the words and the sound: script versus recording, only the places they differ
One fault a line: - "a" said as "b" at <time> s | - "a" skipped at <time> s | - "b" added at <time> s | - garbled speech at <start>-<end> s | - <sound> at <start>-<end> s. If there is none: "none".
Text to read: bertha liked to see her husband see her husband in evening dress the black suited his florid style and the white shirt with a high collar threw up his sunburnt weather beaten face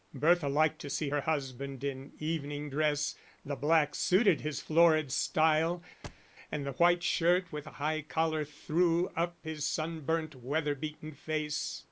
- "see her husband" skipped at 1.8 s
- thud at 6.0-6.3 s